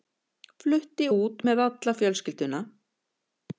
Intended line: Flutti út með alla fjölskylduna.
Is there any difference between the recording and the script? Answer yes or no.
no